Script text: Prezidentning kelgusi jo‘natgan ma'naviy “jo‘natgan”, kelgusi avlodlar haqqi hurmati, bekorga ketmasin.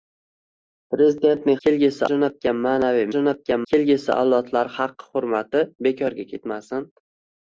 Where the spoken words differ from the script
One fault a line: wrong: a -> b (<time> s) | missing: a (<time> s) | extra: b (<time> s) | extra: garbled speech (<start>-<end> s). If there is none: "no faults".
no faults